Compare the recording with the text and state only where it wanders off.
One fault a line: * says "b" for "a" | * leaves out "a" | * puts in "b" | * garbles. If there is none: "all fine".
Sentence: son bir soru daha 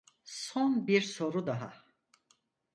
all fine